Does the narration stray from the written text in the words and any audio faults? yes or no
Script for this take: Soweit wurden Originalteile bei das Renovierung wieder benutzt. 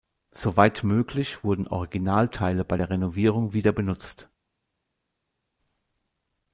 yes